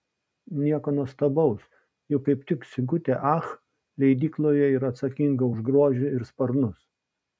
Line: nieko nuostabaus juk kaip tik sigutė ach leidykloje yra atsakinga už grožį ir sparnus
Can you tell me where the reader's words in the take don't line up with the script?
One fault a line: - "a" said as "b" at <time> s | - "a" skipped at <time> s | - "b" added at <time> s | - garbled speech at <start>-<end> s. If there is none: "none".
none